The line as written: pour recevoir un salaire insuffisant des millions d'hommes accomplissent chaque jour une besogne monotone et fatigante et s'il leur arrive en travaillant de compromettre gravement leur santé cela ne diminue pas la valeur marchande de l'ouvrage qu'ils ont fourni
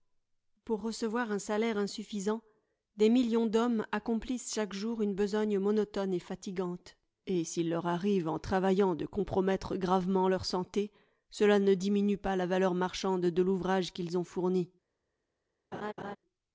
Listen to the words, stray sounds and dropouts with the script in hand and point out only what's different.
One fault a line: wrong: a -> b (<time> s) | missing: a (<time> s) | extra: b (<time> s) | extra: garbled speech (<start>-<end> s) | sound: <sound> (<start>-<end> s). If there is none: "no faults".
sound: laugh (15.7-16.2 s)